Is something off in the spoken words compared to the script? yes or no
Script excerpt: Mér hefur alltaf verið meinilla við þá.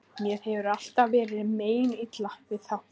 no